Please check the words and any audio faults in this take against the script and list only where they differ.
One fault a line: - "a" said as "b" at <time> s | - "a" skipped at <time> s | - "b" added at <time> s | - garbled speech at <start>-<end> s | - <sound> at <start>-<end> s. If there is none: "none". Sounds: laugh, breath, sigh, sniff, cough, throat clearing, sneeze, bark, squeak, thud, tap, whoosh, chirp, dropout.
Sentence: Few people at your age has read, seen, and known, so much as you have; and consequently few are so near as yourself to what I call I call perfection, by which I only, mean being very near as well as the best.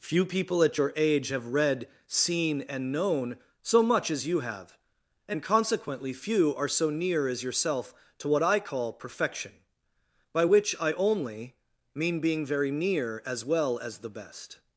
- "has" said as "have" at 1.3 s
- "I call" skipped at 8.9 s